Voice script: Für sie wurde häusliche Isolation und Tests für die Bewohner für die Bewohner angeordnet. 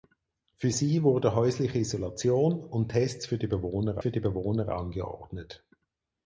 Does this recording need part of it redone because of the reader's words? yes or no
no